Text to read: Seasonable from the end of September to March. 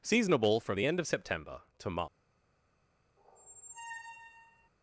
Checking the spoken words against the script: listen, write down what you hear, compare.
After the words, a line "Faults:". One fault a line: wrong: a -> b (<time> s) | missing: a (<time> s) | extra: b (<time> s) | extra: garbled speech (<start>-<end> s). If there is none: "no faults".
Seasonable from the end of September to March.
Faults:
no faults